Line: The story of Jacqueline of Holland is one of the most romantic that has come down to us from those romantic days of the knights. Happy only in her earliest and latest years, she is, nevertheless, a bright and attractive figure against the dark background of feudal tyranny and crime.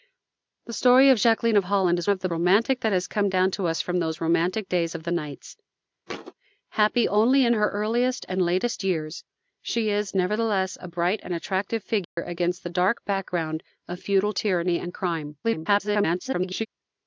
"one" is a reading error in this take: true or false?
true